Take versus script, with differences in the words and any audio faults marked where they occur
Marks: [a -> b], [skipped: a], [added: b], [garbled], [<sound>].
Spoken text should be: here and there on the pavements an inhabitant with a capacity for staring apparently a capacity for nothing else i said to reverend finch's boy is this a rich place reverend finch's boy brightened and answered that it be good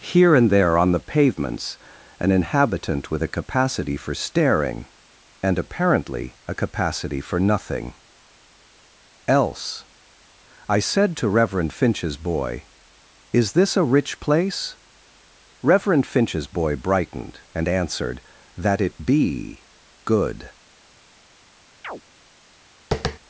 here and there on the pavements an inhabitant with a capacity for staring [added: and] apparently a capacity for nothing else i said to reverend finch's boy is this a rich place reverend finch's boy brightened and answered that it be good [chirp] [tap]